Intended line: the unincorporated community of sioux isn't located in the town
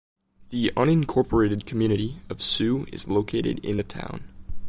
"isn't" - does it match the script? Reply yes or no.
no